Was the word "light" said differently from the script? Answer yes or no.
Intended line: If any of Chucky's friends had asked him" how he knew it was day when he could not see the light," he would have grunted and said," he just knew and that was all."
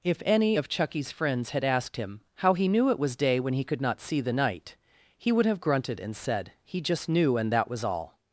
yes